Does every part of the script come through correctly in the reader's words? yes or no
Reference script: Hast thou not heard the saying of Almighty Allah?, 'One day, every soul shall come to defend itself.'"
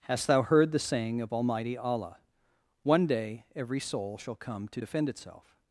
no